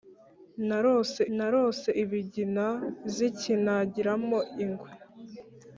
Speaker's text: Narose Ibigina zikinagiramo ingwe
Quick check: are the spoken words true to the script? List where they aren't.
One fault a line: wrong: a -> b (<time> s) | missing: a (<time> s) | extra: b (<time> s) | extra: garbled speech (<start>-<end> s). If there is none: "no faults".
extra: narose (1.4 s)